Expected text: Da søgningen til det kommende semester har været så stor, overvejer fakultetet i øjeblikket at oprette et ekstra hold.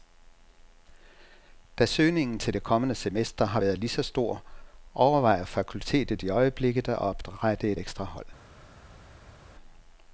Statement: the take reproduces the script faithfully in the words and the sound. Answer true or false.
false